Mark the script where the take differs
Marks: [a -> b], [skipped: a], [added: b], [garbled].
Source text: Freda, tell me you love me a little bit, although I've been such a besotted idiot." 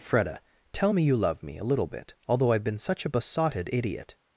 Freda, tell me you love me a little bit, although I've been such a besotted idiot."